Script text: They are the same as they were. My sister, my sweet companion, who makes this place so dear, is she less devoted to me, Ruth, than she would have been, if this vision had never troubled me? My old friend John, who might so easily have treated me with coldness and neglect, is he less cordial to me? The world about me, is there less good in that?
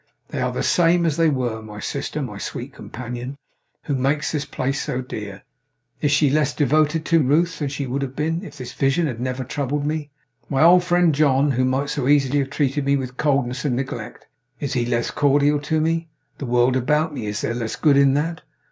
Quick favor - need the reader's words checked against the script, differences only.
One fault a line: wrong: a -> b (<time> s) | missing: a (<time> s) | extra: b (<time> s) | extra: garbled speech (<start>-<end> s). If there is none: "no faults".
missing: me (7.2 s)